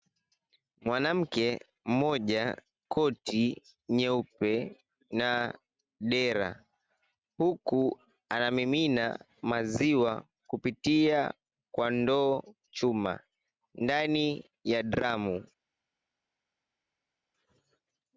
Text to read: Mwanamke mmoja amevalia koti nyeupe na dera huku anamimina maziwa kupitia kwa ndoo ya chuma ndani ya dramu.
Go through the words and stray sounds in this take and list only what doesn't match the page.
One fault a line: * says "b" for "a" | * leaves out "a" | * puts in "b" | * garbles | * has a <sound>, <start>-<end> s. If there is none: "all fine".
* leaves out "amevalia"
* leaves out "ya"